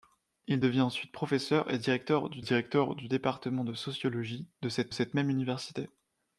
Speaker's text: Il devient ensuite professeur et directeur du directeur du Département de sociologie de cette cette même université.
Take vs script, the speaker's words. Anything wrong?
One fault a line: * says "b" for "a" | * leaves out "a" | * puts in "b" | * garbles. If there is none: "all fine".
all fine